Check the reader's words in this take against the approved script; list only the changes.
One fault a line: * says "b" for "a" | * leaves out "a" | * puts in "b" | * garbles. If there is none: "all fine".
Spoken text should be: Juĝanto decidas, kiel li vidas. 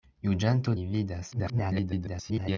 * leaves out "decidas kiel"
* garbles